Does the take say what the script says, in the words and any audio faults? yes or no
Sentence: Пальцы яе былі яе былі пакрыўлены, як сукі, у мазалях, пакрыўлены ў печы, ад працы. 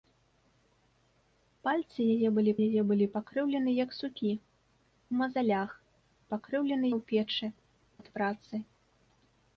yes